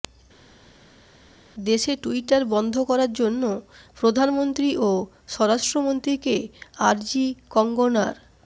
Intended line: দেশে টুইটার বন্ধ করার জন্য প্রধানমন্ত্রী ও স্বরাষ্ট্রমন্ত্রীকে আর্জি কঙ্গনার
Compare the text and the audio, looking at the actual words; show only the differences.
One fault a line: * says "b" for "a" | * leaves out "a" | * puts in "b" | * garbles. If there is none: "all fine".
all fine